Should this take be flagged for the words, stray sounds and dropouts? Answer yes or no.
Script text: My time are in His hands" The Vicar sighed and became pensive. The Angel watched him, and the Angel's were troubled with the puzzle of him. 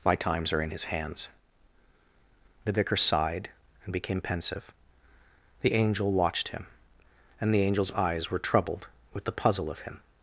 yes